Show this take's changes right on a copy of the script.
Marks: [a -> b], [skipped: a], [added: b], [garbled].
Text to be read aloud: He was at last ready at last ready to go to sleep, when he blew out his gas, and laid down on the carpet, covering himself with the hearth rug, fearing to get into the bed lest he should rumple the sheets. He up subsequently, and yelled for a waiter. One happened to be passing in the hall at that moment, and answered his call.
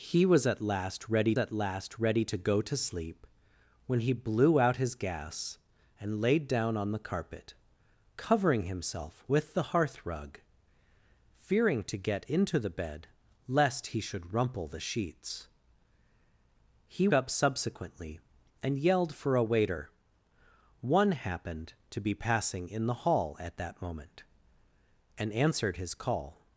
He was at last ready at last ready to go to sleep, when he blew out his gas, and laid down on the carpet, covering himself with the hearth rug, fearing to get into the bed lest he should rumple the sheets. He up subsequently, and yelled for a waiter. One happened to be passing in the hall at that moment, and answered his call.